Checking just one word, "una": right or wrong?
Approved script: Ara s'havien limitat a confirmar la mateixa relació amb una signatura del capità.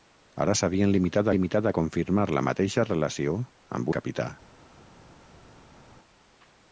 wrong